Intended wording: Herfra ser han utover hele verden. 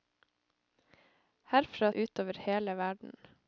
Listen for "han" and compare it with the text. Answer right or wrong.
wrong